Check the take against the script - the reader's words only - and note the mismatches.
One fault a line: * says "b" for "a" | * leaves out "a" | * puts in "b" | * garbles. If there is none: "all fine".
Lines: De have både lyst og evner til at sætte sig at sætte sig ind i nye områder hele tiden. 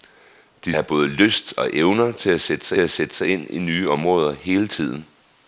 all fine